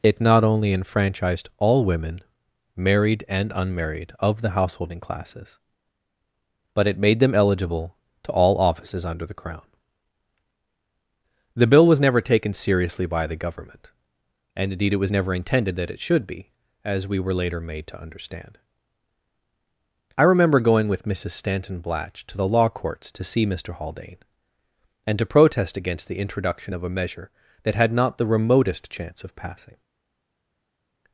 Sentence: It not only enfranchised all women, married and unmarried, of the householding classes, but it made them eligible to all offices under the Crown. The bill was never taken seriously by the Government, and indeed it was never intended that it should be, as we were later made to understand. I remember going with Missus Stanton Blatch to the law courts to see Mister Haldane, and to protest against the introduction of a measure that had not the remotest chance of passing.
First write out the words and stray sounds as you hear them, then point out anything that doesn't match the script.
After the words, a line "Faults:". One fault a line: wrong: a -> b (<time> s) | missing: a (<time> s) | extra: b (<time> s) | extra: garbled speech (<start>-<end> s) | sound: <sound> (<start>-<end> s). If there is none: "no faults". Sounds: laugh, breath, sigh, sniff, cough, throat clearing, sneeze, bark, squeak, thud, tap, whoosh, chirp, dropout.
It not only enfranchised all women, married and unmarried, of the householding classes, but it made them eligible to all offices under the Crown. The bill was never taken seriously by the Government, and indeed it was never intended that it should be, as we were later made to understand. I remember going with Missus Stanton Blatch to the law courts to see Mister Haldane, and to protest against the introduction of a measure that had not the remotest chance of passing.
Faults:
no faults